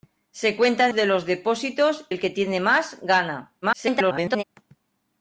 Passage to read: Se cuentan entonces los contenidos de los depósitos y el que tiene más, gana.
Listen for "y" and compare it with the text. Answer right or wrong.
wrong